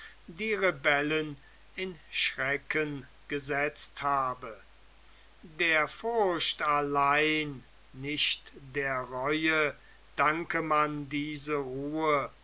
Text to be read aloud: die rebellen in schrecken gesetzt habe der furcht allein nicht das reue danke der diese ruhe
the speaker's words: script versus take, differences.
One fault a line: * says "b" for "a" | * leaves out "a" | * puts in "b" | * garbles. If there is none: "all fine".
* says "der" for "das"
* says "man" for "der"